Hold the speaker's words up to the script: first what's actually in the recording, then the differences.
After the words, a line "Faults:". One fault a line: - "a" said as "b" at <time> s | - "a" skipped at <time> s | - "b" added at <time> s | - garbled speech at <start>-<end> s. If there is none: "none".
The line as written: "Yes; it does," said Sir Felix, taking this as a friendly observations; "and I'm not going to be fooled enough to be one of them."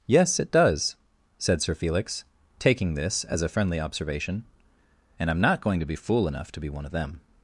"Yes; it does," said Sir Felix, taking this as a friendly observation; "and I'm not going to be fool enough to be one of them."
Faults:
- "observations" said as "observation" at 3.8 s
- "fooled" said as "fool" at 6.0 s